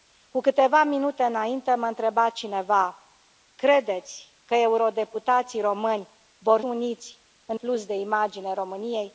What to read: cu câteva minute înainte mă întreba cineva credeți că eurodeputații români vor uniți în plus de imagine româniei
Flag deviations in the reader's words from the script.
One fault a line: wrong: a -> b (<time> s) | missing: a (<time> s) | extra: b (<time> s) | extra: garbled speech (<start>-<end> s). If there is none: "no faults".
no faults